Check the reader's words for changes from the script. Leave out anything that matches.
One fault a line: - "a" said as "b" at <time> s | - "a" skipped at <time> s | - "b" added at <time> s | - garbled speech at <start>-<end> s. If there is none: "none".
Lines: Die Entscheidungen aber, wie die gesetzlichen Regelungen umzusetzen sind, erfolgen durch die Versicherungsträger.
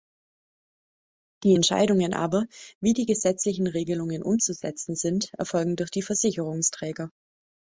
none